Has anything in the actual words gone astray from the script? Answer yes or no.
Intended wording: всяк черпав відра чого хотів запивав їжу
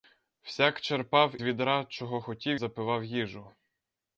no